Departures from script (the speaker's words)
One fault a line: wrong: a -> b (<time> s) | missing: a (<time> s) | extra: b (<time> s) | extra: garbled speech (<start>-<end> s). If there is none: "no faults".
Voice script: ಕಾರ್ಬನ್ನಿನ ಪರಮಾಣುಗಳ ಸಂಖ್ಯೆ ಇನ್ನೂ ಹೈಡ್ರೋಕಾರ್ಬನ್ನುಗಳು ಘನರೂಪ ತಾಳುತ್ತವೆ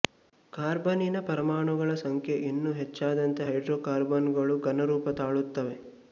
extra: ಹೆಚ್ಚಾದಂತೆ (2.7 s)